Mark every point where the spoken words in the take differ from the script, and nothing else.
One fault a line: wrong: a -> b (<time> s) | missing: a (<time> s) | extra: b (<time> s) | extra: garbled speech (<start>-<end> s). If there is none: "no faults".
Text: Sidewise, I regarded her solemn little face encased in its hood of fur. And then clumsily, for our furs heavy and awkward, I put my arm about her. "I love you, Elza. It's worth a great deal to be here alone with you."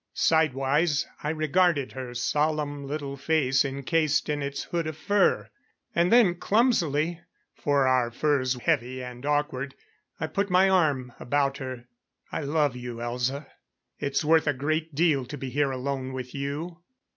no faults